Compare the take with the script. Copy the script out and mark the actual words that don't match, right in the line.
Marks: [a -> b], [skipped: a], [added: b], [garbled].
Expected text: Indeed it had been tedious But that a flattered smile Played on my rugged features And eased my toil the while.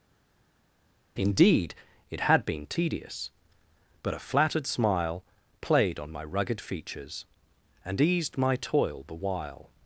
Indeed it had been tedious But [skipped: that] a flattered smile Played on my rugged features And eased my toil the while.